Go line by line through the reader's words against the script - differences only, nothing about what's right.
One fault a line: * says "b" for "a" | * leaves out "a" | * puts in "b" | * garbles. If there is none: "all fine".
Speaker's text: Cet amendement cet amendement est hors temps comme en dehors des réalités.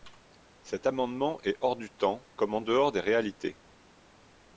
* leaves out "cet amendement"
* puts in "du"